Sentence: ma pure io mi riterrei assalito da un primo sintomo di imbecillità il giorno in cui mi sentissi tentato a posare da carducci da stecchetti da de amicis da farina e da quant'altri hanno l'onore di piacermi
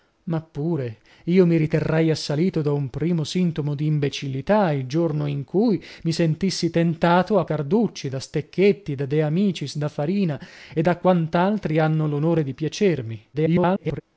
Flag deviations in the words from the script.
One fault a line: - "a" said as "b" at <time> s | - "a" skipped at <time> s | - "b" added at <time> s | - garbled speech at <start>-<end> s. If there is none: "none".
- "posare da" skipped at 7.5 s
- garbled speech at 13.3-14.0 s